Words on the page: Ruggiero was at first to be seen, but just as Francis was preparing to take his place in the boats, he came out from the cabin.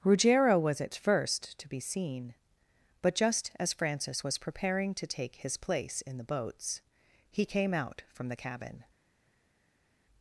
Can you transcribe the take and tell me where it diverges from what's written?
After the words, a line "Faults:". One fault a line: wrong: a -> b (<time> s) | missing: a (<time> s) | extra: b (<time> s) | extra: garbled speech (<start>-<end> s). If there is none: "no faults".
Ruggiero was at first to be seen, but just as Francis was preparing to take his place in the boats, he came out from the cabin.
Faults:
no faults